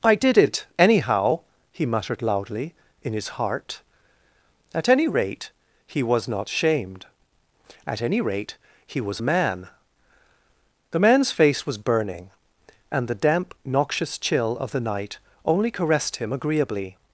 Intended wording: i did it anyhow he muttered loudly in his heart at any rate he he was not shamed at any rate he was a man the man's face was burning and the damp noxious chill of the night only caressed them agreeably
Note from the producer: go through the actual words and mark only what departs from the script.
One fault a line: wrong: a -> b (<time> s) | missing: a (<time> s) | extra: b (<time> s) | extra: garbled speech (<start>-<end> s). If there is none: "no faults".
missing: he (6.0 s)
wrong: them -> him (16.2 s)